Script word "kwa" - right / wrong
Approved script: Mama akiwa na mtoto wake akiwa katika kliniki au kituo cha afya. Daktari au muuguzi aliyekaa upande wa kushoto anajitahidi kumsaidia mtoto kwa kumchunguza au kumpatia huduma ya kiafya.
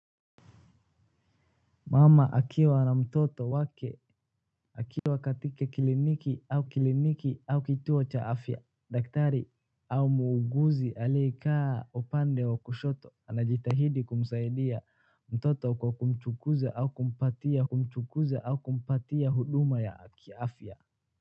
right